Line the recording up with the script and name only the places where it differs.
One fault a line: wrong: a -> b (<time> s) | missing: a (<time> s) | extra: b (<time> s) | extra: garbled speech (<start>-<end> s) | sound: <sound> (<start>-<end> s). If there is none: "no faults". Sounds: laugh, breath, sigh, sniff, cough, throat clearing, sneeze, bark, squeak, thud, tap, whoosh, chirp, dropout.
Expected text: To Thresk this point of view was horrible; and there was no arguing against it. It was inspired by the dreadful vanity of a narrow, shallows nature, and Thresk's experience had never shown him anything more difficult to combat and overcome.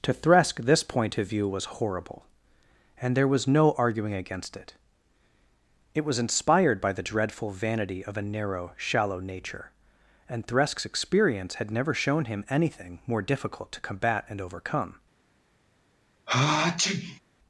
wrong: shallows -> shallow (8.8 s)
sound: sneeze (16.3-17.2 s)